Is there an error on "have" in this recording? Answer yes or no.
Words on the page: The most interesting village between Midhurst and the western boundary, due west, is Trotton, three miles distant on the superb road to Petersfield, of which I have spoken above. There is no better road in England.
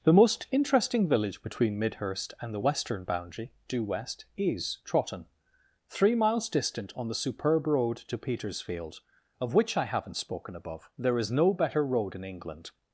yes